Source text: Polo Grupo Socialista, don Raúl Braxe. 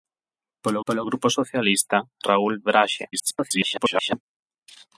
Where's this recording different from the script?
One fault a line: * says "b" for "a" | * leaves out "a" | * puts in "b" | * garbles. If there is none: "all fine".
* puts in "polo"
* leaves out "don"
* garbles